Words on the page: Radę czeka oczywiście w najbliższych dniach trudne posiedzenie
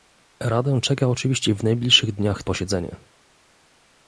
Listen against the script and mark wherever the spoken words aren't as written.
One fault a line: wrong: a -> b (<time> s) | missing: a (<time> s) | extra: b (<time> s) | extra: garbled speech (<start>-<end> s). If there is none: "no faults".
missing: trudne (2.4 s)